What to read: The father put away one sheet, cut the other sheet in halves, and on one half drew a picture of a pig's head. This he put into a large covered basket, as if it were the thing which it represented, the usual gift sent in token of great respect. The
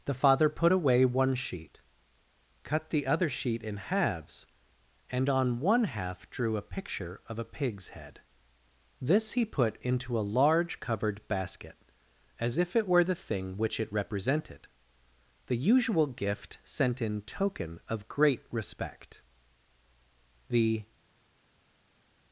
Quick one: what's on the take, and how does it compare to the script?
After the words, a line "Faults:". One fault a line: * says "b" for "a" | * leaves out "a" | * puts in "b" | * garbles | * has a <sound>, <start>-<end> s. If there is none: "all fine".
The father put away one sheet, cut the other sheet in halves, and on one half drew a picture of a pig's head. This he put into a large covered basket, as if it were the thing which it represented, the usual gift sent in token of great respect. The
Faults:
all fine